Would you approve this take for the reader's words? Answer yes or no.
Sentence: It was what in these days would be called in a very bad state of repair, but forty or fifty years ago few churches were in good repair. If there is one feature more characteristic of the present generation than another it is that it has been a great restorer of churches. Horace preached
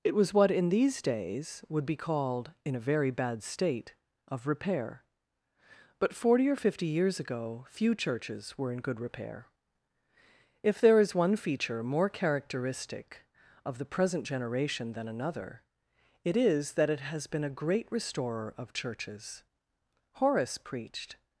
yes